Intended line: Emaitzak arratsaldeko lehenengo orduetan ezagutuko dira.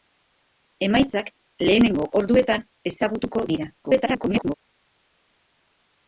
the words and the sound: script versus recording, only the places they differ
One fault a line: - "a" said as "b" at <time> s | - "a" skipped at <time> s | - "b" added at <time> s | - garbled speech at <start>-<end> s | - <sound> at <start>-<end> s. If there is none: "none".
- "arratsaldeko" skipped at 1.3 s
- garbled speech at 3.8-4.5 s